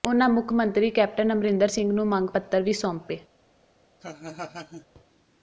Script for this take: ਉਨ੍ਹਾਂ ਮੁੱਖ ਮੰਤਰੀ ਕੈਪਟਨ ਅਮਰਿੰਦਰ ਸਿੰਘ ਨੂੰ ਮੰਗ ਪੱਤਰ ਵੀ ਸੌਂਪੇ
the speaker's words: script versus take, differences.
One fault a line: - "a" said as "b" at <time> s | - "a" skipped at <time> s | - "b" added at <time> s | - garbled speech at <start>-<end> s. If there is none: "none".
none